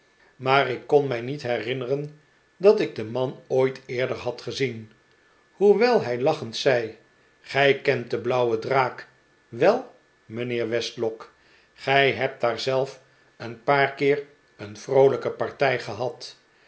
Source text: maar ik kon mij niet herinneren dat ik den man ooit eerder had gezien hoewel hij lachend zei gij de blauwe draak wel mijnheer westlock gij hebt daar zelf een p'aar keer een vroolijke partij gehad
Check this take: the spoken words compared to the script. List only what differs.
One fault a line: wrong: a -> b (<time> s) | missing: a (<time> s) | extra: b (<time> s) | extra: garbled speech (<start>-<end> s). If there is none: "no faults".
extra: kent (7.8 s)